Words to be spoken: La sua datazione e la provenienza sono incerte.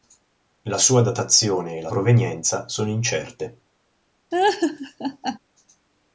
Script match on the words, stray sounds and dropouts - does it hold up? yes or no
no